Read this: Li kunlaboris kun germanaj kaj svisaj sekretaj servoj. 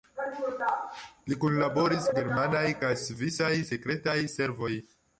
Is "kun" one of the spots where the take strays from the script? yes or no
yes